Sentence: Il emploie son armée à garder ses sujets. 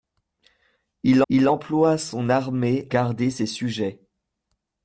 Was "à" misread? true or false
true